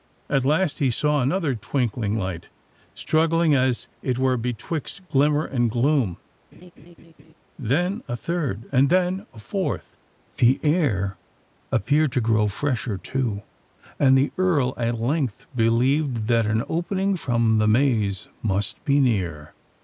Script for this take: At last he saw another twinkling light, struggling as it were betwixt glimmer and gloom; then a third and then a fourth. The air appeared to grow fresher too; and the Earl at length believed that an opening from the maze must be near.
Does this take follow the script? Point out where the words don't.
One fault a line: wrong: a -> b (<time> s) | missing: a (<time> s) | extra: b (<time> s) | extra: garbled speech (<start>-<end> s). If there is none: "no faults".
no faults